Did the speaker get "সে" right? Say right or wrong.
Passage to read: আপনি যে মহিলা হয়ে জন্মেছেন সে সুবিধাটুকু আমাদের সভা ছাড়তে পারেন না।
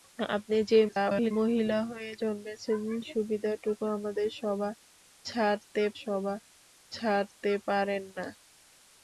wrong